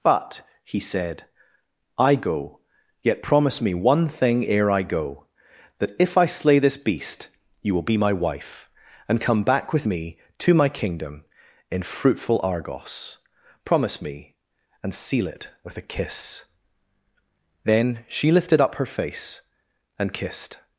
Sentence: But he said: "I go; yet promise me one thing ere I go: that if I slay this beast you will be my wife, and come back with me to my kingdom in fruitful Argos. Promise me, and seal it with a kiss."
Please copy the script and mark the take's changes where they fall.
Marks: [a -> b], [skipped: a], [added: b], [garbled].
But he said: "I go; yet promise me one thing ere I go: that if I slay this beast you will be my wife, and come back with me to my kingdom in fruitful Argos. Promise me, and seal it with a kiss." [added: Then she lifted up her face and kissed]